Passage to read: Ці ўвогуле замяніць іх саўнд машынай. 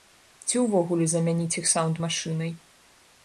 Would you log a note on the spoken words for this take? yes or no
no